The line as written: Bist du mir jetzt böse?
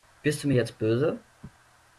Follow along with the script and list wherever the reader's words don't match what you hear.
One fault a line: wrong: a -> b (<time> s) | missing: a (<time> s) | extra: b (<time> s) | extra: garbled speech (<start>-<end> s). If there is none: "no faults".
no faults